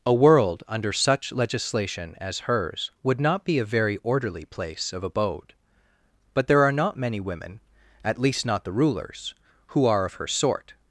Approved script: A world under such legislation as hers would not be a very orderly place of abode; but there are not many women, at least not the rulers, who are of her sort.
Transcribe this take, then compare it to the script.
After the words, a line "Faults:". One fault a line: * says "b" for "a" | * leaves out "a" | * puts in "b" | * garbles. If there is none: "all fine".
A world under such legislation as hers would not be a very orderly place of abode; but there are not many women, at least not the rulers, who are of her sort.
Faults:
all fine